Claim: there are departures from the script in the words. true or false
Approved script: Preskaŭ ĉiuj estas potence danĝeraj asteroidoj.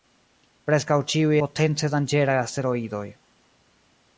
true